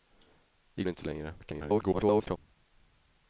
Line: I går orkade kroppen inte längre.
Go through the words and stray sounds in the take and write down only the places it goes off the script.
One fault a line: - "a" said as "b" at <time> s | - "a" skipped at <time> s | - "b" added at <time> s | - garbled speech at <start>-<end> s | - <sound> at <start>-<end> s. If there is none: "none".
- "går orkade kroppen" skipped at 0.8 s
- garbled speech at 1.4-2.4 s